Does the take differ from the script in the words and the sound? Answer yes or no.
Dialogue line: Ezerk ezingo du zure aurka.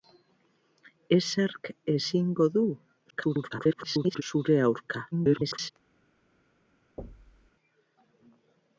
yes